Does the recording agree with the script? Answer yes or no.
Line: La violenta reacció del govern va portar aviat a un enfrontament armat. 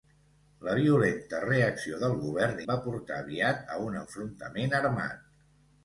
yes